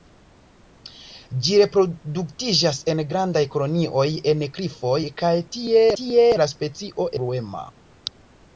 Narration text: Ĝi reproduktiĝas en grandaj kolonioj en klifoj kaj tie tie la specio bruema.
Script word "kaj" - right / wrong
right